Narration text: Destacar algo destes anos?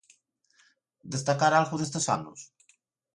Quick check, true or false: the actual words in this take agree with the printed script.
true